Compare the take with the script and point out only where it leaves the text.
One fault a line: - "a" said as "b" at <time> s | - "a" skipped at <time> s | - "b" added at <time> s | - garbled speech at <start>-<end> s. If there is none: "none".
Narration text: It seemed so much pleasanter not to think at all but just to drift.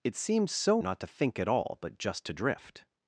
- "much pleasanter" skipped at 0.8 s